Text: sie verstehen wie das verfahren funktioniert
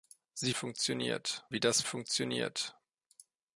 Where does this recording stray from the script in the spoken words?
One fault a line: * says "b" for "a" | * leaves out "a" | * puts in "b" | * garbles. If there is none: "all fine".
* says "funktioniert" for "verstehen"
* leaves out "verfahren"